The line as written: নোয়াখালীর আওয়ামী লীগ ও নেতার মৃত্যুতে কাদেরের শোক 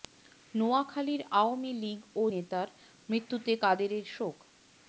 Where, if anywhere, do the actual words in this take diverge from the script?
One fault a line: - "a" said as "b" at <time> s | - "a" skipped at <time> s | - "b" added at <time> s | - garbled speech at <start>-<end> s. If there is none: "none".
none